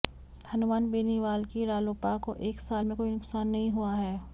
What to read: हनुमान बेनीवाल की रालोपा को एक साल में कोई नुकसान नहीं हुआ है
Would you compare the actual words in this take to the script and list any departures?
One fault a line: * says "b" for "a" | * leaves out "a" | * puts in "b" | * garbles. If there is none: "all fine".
all fine